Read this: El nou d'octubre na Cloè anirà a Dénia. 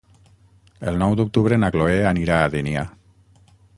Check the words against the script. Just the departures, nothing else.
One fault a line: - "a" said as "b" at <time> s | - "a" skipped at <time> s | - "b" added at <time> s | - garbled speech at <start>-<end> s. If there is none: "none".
none